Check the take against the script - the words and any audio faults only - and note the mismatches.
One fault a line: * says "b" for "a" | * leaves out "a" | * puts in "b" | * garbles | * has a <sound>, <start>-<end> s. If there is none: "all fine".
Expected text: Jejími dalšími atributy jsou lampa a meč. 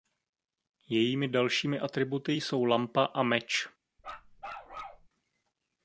* has a bark, 4.0-5.1 s